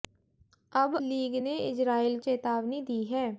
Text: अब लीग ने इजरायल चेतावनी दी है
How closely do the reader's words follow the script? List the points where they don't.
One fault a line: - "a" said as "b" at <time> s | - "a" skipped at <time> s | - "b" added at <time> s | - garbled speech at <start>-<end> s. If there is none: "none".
none